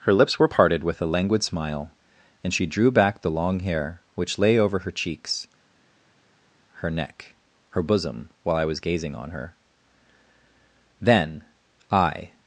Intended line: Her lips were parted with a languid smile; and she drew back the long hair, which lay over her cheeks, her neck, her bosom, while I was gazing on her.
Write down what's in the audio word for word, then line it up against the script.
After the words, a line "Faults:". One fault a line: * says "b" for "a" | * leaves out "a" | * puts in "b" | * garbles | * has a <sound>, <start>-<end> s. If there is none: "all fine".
Her lips were parted with a languid smile; and she drew back the long hair, which lay over her cheeks, her neck, her bosom, while I was gazing on her. Then, I
Faults:
* puts in "Then I"